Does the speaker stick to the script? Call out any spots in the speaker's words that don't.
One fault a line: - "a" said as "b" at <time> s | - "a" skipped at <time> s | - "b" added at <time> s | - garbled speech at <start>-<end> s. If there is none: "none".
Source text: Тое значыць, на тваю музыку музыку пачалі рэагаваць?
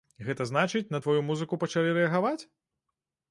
- "Тое" said as "Гэта" at 0.3 s
- "музыку" skipped at 1.6 s